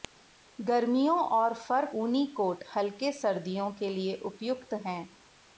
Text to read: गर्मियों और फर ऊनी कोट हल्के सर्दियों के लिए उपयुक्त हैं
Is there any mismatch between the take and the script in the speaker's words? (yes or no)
no